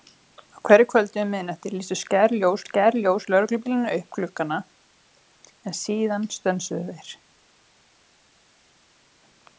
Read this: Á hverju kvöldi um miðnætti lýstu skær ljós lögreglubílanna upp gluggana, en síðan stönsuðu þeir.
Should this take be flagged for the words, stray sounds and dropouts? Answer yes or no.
yes